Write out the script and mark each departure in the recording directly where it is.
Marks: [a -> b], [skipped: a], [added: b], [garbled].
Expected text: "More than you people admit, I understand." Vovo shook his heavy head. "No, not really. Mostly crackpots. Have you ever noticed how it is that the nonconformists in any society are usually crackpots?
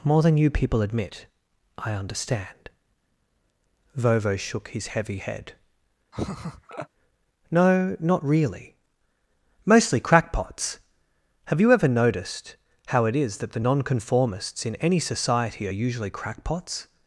"More than you people admit, I understand." Vovo shook his heavy head. "No, not really. Mostly crackpots. Have you ever noticed how it is that the nonconformists in any society are usually crackpots?